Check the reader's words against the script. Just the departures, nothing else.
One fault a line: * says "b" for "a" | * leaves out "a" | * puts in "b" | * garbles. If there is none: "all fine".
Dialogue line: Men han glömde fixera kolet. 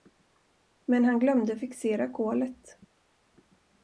all fine